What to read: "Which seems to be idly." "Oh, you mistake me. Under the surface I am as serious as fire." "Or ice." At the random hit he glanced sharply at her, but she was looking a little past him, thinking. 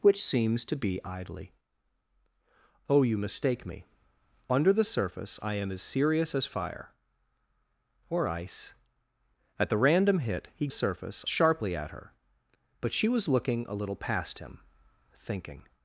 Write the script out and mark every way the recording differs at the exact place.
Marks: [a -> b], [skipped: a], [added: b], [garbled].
"Which seems to be idly." "Oh, you mistake me. Under the surface I am as serious as fire." "Or ice." At the random hit he [glanced -> surface] sharply at her, but she was looking a little past him, thinking.